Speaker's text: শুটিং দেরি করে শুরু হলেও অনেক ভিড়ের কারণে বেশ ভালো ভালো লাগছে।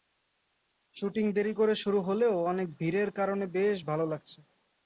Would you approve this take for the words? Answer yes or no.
no